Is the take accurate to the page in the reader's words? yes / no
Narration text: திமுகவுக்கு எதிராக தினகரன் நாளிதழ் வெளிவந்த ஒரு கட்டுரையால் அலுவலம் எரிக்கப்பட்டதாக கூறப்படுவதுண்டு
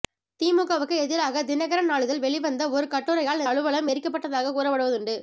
yes